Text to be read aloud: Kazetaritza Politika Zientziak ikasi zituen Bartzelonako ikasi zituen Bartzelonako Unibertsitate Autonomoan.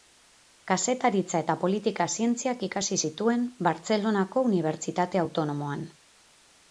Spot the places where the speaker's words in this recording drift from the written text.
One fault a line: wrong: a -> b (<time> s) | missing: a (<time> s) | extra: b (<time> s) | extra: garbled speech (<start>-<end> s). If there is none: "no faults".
extra: eta (1.4 s)
missing: ikasi zituen Bartzelonako (4.4 s)